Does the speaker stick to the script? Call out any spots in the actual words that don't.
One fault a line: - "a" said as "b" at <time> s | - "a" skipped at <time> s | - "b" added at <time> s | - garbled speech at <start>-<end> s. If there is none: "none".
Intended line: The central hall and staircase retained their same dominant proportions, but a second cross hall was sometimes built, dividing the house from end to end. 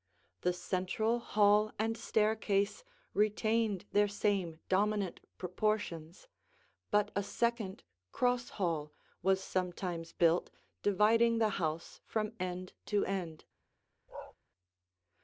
none